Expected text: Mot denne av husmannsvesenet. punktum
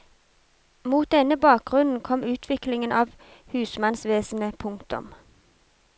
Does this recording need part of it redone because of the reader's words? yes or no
yes